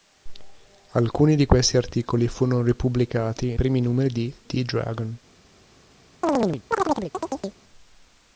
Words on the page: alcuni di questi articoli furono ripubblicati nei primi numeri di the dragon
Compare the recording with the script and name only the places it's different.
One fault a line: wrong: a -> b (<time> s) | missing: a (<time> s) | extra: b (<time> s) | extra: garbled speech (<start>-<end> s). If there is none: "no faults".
missing: nei (3.5 s)